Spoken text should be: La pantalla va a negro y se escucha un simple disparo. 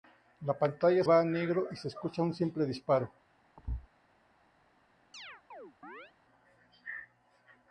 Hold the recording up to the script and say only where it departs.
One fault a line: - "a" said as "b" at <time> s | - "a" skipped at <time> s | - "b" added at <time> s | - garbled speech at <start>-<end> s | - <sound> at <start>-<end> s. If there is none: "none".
- thud at 3.6-3.9 s
- chirp at 5.1-6.1 s